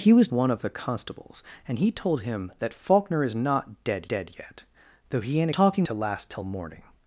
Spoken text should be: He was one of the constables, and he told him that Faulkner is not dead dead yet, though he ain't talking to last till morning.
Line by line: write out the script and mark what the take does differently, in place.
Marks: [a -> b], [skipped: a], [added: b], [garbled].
He was one of the constables, and he told him that Faulkner is not dead dead yet, though he ain't talking to last till morning.